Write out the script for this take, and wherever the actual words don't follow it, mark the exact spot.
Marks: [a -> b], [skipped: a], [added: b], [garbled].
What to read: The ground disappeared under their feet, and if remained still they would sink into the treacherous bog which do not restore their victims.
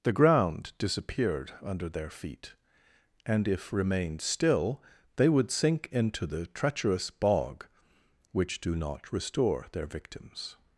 The ground disappeared under their feet, and if remained still they would sink into the treacherous bog which do not restore their victims.